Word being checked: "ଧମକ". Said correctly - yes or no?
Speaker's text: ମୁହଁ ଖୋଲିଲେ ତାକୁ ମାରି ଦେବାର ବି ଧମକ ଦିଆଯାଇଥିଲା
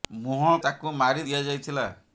no